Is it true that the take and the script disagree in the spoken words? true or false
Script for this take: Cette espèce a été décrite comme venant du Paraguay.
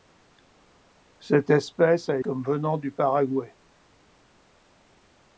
true